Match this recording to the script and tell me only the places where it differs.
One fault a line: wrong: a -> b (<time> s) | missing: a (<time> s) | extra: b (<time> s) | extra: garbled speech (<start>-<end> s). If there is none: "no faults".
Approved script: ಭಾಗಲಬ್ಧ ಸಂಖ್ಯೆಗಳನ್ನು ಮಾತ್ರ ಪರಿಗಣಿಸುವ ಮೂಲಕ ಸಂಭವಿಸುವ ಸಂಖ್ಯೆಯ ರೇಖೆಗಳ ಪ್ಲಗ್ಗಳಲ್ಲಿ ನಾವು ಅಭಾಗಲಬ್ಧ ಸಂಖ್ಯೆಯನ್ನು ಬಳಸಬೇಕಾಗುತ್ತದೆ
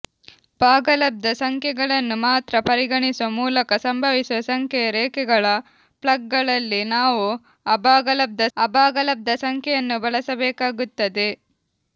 extra: ಅಭಾಗಲಬ್ಧ (8.6 s)